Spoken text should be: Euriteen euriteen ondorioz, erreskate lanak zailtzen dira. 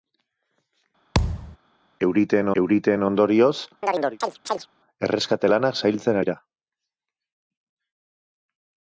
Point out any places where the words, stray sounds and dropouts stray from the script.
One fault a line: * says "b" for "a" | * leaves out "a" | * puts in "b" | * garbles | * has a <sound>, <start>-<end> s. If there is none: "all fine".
* has a thud, 1.1-1.6 s
* has a chirp, 3.8-4.7 s